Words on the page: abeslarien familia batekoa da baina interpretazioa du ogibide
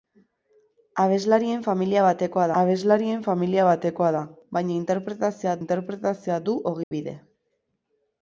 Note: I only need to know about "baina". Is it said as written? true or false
true